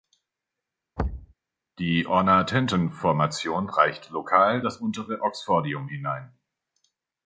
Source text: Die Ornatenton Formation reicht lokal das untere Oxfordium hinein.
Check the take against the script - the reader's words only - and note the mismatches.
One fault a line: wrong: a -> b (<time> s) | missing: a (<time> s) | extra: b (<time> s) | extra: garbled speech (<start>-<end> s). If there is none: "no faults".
no faults